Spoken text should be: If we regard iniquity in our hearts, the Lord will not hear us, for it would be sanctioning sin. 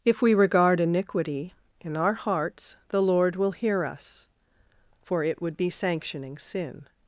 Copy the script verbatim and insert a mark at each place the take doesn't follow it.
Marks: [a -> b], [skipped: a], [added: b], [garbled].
If we regard iniquity in our hearts, the Lord will [skipped: not] hear us, for it would be sanctioning sin.